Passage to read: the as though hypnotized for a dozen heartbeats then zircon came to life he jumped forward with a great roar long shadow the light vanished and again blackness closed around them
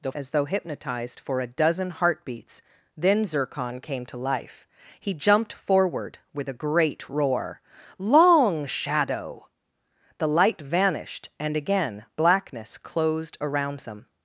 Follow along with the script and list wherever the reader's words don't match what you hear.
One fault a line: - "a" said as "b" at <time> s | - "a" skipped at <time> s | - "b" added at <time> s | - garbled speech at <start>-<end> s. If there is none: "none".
none